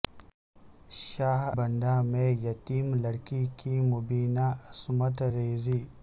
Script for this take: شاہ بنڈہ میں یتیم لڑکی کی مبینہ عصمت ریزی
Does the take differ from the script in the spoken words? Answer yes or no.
no